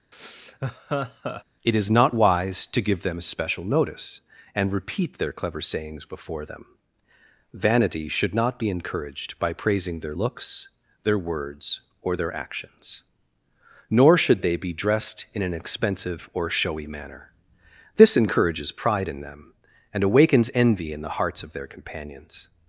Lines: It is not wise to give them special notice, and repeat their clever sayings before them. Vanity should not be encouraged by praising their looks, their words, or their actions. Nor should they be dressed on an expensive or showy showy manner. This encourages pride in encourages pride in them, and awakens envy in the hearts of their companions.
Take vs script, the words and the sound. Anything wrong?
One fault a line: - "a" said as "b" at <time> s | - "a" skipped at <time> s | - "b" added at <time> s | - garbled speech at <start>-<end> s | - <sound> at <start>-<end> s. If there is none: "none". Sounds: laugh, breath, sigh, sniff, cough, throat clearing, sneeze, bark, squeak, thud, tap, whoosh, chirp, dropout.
- laugh at 0.1-1.4 s
- "on" said as "in" at 15.3 s
- "showy" skipped at 16.9 s
- "encourages pride in" skipped at 19.2 s